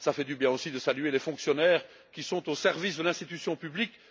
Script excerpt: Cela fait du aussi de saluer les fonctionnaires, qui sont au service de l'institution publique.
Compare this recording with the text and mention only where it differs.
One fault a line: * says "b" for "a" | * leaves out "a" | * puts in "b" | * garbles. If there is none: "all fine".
* puts in "bien"